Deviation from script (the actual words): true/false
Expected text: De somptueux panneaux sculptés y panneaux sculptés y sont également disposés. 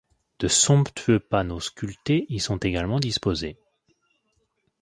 true